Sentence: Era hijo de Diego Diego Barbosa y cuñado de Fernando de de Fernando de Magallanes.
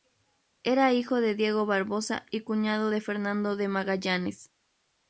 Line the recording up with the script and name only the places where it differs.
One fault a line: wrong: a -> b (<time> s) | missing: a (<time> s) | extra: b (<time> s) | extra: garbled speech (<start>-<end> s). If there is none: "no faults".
missing: Diego (1.7 s)
missing: de Fernando de (3.7 s)